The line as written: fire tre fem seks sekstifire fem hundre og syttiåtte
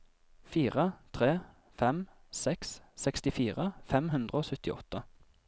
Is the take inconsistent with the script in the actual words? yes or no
no